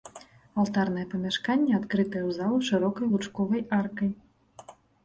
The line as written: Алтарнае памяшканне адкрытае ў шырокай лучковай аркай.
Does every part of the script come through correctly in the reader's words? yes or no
no